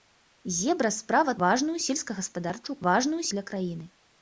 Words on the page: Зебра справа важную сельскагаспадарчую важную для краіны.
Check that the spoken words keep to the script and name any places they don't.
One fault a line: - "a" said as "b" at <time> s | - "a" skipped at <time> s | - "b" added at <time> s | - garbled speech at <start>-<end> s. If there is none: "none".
none